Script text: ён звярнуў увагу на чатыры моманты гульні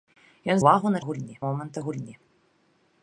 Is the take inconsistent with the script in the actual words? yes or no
yes